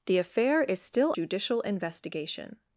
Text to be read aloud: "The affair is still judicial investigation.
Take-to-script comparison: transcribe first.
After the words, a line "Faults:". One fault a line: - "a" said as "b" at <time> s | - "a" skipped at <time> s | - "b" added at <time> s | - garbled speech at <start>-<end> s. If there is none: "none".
"The affair is still judicial investigation.
Faults:
none